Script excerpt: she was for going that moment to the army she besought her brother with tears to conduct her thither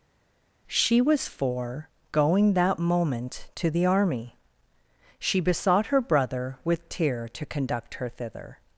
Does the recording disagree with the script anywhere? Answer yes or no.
yes